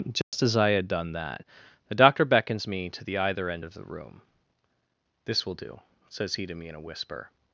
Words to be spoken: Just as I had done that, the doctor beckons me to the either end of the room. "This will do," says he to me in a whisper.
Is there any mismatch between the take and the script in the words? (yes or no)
no